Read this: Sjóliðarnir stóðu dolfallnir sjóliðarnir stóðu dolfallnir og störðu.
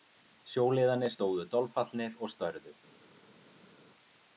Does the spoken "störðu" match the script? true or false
true